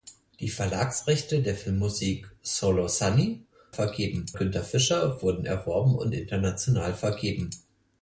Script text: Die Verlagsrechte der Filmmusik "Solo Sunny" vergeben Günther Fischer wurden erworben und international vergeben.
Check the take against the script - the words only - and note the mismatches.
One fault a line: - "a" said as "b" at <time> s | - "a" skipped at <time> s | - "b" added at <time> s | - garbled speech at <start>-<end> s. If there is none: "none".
none